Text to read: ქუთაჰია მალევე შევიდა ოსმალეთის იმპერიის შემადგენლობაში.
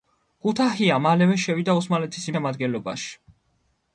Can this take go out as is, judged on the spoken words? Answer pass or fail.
fail